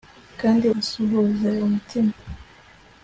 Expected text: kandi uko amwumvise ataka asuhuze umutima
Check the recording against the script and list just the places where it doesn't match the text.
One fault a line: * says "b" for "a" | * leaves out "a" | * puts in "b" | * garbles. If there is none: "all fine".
* leaves out "uko amwumvise ataka"